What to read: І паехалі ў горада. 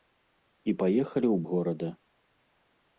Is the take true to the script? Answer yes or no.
yes